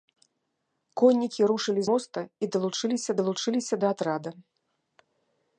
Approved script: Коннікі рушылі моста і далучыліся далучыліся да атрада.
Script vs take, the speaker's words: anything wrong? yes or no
no